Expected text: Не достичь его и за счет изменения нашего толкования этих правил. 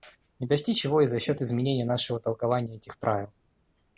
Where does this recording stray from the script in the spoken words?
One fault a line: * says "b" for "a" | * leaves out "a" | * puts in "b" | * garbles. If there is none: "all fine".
all fine